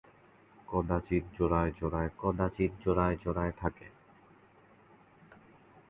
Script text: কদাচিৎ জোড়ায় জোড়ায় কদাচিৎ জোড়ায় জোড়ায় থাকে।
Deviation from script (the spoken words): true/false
false